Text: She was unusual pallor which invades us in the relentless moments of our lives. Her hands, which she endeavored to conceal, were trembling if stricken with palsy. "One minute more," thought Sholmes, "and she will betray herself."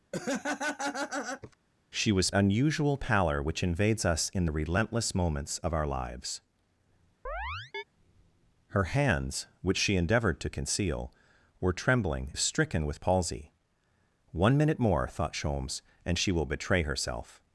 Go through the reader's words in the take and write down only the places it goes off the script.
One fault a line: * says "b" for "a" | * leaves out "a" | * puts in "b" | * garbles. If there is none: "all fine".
all fine